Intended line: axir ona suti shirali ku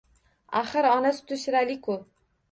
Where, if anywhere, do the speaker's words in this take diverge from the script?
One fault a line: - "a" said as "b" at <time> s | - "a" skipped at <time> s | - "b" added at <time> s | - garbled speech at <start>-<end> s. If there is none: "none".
none